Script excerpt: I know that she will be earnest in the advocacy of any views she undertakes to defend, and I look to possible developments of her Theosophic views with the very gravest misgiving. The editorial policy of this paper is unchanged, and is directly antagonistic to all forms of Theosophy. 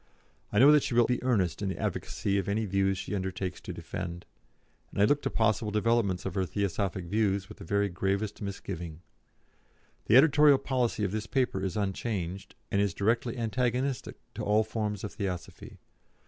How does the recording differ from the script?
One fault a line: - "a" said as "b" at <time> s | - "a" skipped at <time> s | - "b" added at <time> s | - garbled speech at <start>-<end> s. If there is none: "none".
none